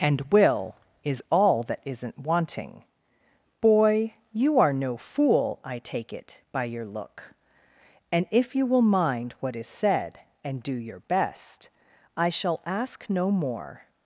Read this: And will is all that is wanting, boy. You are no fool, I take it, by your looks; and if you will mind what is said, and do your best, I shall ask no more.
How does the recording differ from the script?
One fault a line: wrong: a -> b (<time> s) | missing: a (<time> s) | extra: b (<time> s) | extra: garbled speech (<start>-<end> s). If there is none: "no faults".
wrong: is -> isn't (1.9 s)
wrong: looks -> look (6.8 s)